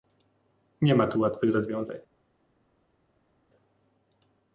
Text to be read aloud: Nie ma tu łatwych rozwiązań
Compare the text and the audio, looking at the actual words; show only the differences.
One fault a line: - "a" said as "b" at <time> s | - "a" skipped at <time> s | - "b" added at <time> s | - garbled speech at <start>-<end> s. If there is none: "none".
none